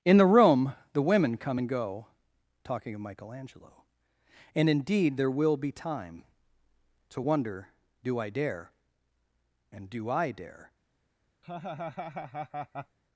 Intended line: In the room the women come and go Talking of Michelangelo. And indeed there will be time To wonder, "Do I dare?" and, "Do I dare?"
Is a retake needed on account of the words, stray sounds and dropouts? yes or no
yes